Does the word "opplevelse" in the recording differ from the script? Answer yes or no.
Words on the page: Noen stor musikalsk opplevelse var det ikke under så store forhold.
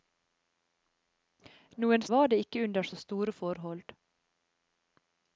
yes